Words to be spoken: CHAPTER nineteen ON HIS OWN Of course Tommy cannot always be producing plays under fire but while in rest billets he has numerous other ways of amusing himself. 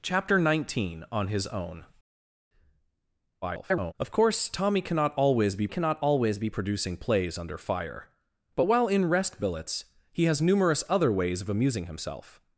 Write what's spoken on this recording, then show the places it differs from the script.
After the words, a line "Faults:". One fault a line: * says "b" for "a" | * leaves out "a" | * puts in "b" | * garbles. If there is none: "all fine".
CHAPTER nineteen ON HIS OWN [garbled] Of course Tommy cannot always be cannot always be producing plays under fire but while in rest billets he has numerous other ways of amusing himself.
Faults:
* garbles
* puts in "cannot always be"